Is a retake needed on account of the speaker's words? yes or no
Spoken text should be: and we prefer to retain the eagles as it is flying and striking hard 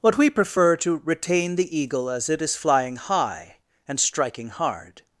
yes